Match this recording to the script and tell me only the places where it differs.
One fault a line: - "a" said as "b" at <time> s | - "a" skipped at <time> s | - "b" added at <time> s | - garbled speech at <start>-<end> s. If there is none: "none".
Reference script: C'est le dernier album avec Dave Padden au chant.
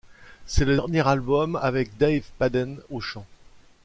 none